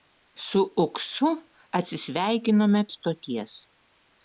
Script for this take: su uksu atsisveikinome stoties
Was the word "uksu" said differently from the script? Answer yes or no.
no